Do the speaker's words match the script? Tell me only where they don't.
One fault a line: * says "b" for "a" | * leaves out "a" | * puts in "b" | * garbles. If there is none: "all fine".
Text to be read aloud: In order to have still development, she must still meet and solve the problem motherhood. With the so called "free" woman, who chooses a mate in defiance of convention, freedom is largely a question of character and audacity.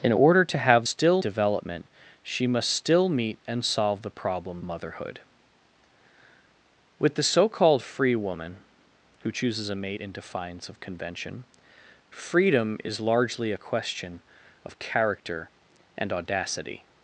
all fine